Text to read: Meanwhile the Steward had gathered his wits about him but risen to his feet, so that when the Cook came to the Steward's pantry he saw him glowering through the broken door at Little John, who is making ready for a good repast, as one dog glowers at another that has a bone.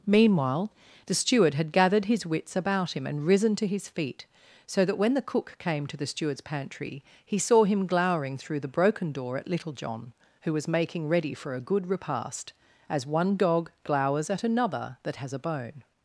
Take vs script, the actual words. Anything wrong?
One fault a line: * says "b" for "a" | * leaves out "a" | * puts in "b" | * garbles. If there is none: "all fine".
* says "and" for "but"
* says "was" for "is"